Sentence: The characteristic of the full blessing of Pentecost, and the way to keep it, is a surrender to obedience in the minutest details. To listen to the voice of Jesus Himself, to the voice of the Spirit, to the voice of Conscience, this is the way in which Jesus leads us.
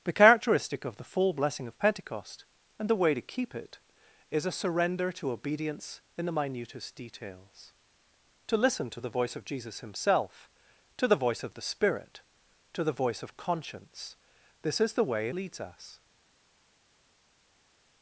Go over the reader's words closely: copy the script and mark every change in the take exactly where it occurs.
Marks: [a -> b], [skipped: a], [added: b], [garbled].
The characteristic of the full blessing of Pentecost, and the way to keep it, is a surrender to obedience in the minutest details. To listen to the voice of Jesus Himself, to the voice of the Spirit, to the voice of Conscience, this is the way [skipped: in which Jesus] leads us.